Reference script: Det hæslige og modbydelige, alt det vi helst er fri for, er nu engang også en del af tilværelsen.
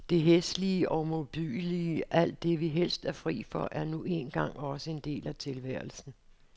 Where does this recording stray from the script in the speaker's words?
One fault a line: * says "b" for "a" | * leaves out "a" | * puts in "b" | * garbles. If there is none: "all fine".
all fine